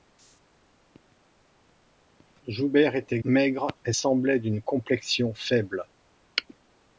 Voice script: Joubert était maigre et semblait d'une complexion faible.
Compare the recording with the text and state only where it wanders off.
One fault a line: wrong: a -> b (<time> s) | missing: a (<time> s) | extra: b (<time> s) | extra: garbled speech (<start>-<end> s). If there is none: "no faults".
no faults